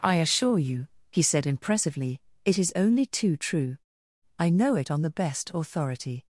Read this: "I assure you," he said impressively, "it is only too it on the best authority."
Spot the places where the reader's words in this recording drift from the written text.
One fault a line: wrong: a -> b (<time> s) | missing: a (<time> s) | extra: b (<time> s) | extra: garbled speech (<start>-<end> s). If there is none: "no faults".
extra: true I know (3.4 s)